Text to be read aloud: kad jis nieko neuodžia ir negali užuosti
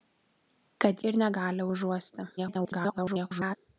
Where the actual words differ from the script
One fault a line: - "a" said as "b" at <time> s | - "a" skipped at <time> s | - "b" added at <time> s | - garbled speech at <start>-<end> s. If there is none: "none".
- "jis nieko neuodžia" skipped at 1.0 s
- garbled speech at 2.4-3.6 s